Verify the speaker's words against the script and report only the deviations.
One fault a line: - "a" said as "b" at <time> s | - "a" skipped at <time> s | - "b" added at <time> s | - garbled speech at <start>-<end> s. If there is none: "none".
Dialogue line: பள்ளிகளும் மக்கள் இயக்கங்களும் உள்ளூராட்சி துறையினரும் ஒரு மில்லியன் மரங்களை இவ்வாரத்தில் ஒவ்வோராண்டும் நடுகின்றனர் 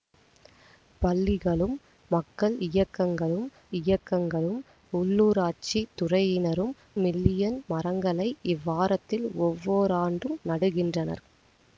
- "இயக்கங்களும்" added at 3.8 s
- "ஒரு" skipped at 6.7 s